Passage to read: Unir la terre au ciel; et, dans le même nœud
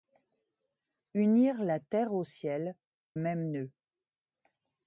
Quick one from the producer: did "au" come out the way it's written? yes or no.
yes